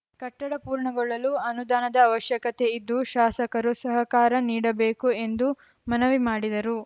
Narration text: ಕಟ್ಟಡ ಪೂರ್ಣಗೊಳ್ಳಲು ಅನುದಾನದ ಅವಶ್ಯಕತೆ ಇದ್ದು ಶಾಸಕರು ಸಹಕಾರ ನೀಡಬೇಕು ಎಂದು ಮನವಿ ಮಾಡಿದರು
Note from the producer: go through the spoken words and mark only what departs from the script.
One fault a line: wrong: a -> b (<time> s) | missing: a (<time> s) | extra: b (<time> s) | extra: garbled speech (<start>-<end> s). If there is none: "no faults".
no faults